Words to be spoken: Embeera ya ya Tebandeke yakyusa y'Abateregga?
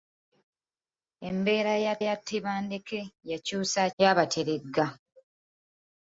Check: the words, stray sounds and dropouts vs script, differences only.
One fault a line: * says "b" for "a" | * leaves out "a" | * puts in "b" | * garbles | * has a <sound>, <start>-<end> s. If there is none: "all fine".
all fine